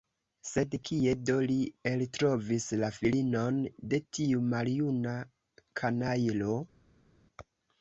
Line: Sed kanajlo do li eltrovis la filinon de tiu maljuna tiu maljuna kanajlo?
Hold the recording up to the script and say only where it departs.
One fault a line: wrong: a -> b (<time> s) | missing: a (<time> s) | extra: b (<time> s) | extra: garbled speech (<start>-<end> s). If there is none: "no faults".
wrong: kanajlo -> kie (0.9 s)
missing: tiu maljuna (5.2 s)